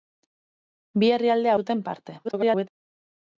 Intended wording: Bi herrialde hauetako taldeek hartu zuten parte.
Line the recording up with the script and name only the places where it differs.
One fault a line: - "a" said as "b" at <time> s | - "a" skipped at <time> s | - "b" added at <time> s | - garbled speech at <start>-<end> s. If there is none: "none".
- "hauetako taldeek hartu" skipped at 1.5 s
- garbled speech at 2.2-2.7 s